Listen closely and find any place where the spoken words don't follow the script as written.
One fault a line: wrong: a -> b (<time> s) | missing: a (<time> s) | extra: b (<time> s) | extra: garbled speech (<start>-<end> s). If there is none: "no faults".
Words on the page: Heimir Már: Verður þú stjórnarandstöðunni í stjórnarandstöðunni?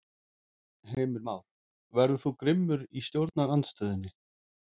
wrong: stjórnarandstöðunni -> grimmur (2.4 s)